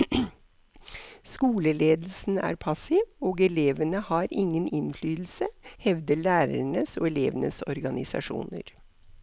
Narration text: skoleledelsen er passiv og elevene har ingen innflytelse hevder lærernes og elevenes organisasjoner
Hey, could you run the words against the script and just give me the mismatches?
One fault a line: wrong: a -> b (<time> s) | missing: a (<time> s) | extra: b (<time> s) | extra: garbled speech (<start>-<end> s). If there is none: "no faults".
no faults